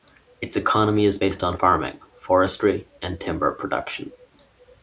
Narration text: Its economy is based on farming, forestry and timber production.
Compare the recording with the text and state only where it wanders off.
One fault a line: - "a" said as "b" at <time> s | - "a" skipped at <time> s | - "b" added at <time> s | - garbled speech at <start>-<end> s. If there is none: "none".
none